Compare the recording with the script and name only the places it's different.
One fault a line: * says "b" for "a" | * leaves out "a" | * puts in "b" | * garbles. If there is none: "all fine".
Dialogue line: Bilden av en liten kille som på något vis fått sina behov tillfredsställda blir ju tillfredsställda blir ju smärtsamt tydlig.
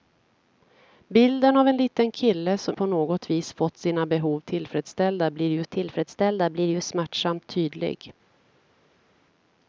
all fine